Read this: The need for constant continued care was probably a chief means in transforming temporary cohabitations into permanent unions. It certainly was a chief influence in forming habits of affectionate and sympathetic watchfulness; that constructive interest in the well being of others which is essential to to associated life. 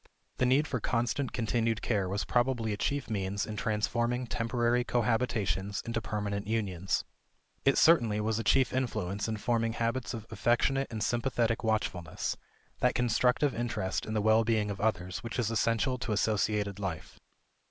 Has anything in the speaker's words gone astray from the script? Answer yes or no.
yes